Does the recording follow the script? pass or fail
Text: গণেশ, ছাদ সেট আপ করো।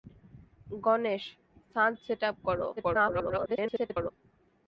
fail